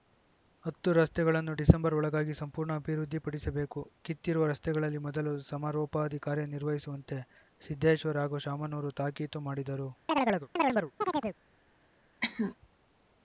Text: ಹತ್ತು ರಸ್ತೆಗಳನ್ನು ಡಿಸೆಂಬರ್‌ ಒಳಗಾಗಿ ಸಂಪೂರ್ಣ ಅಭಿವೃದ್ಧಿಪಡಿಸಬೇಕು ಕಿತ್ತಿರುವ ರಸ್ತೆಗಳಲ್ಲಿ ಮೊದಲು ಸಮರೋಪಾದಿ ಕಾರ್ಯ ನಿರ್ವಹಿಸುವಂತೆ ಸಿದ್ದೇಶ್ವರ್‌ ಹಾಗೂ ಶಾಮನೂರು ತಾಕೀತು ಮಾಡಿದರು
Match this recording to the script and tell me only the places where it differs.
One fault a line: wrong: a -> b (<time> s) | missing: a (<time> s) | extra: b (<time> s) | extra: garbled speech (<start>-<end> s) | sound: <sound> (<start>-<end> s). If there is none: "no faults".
sound: chirp (10.1-11.4 s)
sound: cough (12.2-12.5 s)